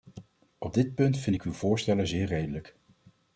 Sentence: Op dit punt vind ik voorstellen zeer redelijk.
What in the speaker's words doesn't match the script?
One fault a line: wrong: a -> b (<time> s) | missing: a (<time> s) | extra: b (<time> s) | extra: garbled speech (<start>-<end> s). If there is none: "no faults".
extra: uw (1.4 s)